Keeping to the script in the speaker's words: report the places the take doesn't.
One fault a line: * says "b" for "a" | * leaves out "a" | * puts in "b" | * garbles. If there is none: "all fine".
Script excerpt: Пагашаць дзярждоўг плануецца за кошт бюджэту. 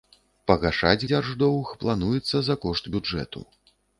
all fine